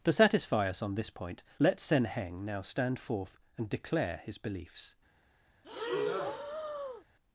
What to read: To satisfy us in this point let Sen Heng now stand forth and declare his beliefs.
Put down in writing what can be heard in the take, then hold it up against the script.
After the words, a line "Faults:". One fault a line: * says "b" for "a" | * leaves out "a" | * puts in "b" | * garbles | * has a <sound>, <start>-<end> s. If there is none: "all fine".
To satisfy us on this point let Sen Heng now stand forth and declare his beliefs.
Faults:
* says "on" for "in"
* has a breath, 5.6-7.0 s